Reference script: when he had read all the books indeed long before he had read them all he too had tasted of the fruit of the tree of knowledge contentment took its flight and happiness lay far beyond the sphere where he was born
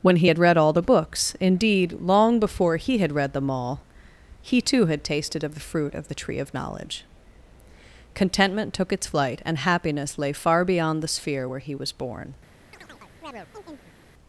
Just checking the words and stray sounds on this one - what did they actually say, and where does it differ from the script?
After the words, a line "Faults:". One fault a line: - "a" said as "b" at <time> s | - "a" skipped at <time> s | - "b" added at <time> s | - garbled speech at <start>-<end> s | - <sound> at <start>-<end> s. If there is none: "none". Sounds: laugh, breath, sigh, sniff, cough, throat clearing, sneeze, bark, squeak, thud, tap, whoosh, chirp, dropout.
when he had read all the books indeed long before he had read them all he too had tasted of the fruit of the tree of knowledge contentment took its flight and happiness lay far beyond the sphere where he was born
Faults:
- chirp at 12.7-14.0 s